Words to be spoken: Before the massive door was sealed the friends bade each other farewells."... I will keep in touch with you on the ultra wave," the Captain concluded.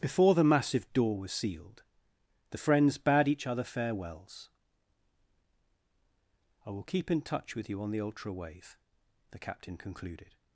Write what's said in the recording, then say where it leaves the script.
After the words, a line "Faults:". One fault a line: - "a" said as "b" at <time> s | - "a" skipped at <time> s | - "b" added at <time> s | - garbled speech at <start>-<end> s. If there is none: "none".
Before the massive door was sealed the friends bade each other farewells."... I will keep in touch with you on the ultra wave," the Captain concluded.
Faults:
none